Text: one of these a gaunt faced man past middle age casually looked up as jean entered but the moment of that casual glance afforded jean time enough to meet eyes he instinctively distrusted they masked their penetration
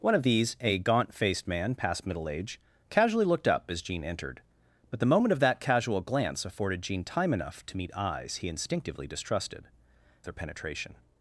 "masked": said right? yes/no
no